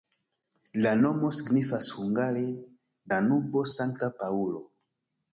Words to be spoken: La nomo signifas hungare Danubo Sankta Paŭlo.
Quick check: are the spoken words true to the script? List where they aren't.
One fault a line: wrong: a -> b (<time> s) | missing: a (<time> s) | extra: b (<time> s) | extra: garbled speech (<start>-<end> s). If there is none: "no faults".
no faults